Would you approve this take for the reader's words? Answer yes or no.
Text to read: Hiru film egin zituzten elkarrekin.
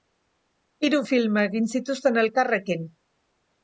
yes